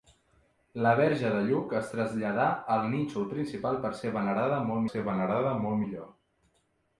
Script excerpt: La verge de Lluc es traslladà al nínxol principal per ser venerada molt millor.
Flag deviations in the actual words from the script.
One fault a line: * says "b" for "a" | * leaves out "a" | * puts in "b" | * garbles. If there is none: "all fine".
* puts in "ser venerada molt"